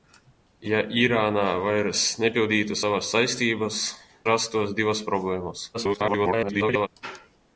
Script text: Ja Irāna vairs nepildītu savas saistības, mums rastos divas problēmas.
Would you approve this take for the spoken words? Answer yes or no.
no